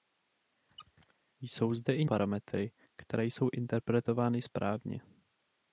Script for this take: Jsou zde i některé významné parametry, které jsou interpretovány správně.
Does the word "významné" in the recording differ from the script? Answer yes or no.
yes